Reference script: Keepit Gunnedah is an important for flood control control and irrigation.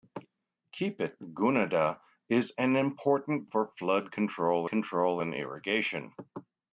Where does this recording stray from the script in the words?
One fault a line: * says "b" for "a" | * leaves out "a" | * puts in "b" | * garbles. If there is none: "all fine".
all fine